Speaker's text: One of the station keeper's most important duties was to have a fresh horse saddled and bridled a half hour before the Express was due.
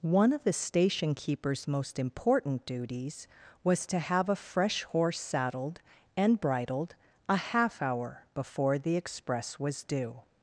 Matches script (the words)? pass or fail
pass